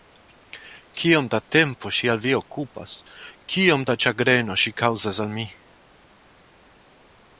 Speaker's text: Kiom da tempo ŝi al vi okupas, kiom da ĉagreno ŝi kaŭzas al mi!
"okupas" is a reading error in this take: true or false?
false